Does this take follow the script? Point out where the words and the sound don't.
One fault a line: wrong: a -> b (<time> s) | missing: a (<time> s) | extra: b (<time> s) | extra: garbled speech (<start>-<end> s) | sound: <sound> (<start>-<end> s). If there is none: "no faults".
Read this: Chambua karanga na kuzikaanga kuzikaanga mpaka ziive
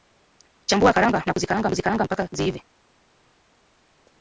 no faults